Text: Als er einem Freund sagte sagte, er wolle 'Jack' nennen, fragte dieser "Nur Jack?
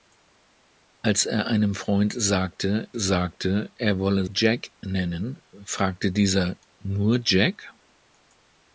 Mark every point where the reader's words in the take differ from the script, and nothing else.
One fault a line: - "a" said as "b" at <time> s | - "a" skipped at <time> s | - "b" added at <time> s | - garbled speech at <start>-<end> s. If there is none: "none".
none